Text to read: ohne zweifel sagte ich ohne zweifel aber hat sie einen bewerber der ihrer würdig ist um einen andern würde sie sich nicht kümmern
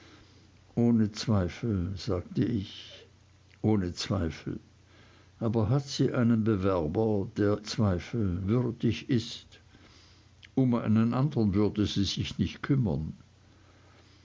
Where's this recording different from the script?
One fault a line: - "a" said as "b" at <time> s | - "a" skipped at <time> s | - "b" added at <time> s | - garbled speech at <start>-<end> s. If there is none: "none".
- "ihrer" said as "zweifel" at 7.6 s